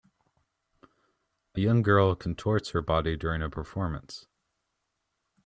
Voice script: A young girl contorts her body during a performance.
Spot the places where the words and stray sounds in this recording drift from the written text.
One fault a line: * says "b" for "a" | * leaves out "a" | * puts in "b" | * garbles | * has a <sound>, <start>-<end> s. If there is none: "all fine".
all fine